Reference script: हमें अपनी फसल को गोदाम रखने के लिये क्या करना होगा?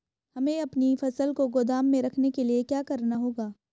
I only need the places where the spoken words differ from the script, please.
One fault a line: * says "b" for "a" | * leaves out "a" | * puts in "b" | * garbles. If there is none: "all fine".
* puts in "में"